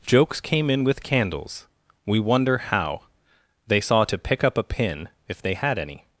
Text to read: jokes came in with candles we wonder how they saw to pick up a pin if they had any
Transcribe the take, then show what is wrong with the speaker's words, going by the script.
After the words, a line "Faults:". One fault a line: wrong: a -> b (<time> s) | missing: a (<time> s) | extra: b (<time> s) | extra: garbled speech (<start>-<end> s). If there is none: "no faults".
jokes came in with candles we wonder how they saw to pick up a pin if they had any
Faults:
no faults